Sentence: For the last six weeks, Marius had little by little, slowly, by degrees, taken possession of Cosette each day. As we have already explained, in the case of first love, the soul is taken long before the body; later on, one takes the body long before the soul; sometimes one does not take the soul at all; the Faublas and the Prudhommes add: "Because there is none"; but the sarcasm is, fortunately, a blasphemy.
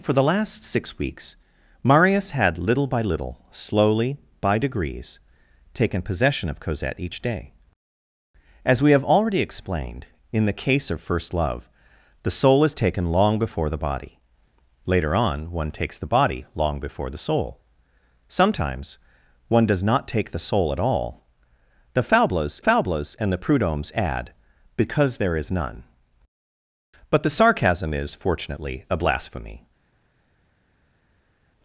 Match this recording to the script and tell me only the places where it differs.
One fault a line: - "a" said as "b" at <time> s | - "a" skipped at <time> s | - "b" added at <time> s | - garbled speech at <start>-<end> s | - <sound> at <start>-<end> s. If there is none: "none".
- "Faublas" added at 22.6 s